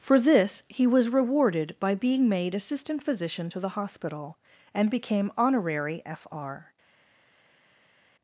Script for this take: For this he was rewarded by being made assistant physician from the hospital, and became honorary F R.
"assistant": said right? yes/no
yes